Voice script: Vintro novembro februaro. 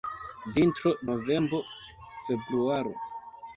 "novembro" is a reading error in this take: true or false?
false